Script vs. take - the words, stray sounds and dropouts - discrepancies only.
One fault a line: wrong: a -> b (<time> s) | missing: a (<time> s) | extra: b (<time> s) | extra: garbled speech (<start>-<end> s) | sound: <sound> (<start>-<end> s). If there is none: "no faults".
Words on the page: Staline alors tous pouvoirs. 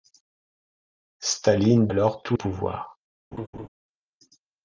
sound: laugh (3.3-3.7 s)